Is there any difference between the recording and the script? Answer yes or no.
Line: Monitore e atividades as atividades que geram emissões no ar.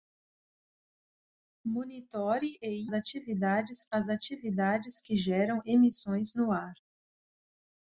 no